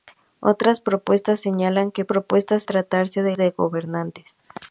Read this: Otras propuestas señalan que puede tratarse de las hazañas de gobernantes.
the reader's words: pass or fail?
fail